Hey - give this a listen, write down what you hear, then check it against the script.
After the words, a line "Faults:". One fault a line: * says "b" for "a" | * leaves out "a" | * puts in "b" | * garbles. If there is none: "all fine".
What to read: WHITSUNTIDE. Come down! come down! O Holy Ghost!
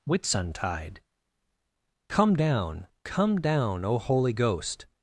WHITSUNTIDE. Come down! come down! O Holy Ghost!
Faults:
all fine